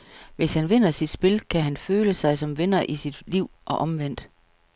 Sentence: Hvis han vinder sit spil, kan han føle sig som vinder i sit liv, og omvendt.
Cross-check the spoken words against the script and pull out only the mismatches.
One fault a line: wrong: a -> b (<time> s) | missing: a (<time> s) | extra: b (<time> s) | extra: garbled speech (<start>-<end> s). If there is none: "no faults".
no faults